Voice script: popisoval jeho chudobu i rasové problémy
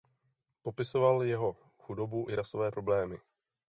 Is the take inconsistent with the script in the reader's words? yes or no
no